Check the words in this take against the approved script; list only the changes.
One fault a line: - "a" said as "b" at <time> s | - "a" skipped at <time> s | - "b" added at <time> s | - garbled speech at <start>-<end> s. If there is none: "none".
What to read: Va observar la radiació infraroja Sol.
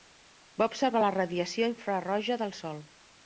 - "del" added at 2.4 s